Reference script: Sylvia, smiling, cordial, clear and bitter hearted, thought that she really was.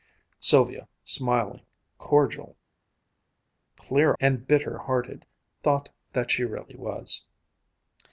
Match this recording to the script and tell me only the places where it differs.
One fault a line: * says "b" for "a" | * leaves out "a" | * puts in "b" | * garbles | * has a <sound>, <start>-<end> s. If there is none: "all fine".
all fine